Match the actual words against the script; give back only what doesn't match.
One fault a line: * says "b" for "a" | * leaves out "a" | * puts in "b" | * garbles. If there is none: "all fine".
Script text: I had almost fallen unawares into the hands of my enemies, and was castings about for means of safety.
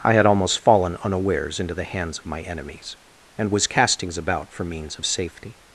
all fine